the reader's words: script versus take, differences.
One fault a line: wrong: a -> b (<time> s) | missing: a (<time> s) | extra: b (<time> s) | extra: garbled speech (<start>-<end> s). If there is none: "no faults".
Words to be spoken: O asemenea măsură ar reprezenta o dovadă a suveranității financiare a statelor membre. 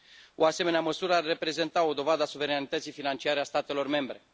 no faults